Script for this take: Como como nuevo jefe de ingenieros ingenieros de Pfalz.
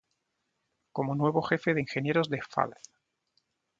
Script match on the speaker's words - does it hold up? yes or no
no